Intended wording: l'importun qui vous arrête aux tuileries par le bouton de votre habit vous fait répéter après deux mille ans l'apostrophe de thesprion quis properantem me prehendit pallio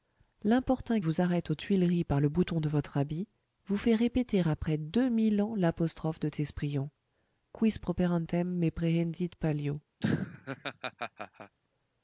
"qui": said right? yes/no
no